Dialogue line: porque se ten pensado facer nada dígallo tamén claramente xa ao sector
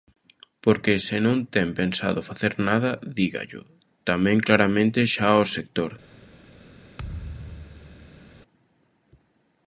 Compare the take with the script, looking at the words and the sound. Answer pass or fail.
fail